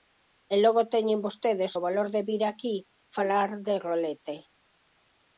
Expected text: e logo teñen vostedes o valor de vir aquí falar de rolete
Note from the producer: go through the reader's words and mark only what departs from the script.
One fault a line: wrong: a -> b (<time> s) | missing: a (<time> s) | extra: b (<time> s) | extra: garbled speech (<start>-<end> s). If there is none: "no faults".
no faults